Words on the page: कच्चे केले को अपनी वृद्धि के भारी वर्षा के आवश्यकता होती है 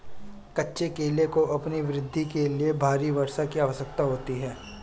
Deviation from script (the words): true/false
true